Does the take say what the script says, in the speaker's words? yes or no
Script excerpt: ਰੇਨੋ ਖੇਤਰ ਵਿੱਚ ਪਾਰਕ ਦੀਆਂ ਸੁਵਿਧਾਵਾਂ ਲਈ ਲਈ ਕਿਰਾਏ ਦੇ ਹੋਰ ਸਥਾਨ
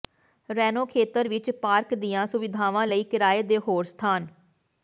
no